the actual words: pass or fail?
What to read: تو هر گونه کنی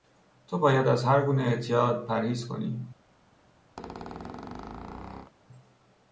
fail